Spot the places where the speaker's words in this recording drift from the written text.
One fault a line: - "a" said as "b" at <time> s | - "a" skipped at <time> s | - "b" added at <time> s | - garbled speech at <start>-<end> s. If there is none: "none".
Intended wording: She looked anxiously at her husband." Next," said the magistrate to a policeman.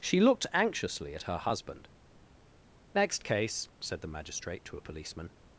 - "case" added at 3.2 s